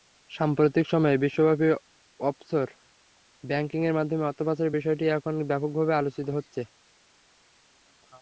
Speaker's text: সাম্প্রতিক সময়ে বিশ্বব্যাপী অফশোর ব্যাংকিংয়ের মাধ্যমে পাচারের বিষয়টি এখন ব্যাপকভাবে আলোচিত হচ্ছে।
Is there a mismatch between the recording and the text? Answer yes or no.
yes